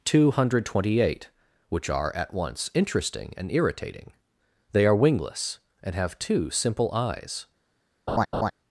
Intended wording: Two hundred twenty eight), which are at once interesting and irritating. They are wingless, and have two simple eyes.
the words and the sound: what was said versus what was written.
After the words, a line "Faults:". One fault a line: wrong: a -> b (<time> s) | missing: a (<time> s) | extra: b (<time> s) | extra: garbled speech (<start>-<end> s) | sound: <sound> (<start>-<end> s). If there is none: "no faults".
Two hundred twenty eight), which are at once interesting and irritating. They are wingless, and have two simple eyes.
Faults:
sound: laugh (8.1-8.5 s)